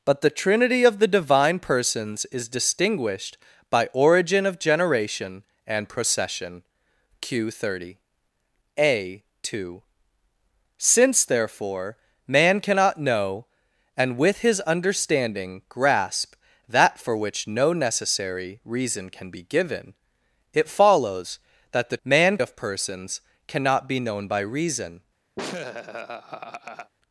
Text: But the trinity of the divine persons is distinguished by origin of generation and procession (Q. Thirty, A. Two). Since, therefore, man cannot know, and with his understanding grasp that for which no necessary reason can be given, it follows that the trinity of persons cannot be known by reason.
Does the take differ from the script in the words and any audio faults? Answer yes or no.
yes